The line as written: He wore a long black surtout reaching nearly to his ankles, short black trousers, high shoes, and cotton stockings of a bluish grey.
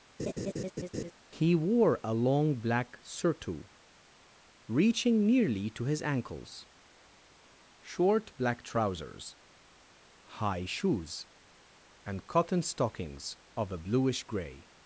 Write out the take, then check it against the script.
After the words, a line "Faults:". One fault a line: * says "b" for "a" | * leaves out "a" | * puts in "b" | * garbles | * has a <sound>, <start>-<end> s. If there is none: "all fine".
He wore a long black surtout reaching nearly to his ankles, short black trousers, high shoes, and cotton stockings of a bluish grey.
Faults:
* has a laugh, 0.2-1.1 s